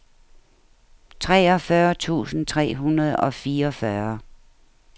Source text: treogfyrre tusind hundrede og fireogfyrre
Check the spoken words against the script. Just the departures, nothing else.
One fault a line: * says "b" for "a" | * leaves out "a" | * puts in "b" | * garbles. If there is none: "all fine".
* puts in "tre"